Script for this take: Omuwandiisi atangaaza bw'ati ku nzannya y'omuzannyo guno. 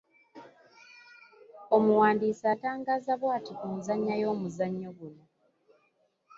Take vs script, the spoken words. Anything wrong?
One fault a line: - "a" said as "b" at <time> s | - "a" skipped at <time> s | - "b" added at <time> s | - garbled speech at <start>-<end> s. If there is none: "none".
none